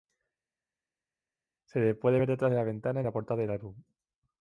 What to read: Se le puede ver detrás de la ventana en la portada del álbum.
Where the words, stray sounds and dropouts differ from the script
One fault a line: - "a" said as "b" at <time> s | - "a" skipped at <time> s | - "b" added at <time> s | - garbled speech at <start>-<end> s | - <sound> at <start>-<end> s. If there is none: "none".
none